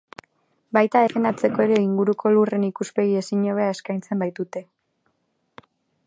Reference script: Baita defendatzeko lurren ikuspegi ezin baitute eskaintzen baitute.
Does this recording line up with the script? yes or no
no